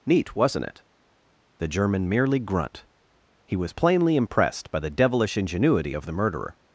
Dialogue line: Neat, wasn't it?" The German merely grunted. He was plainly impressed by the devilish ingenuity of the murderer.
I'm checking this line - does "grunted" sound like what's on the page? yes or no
no